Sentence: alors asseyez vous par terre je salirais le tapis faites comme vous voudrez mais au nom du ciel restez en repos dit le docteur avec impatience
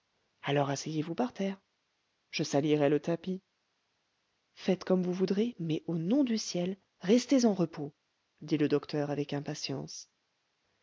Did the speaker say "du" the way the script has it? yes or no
yes